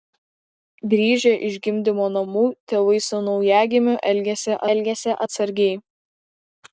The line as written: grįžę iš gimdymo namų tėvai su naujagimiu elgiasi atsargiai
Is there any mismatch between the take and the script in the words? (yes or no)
yes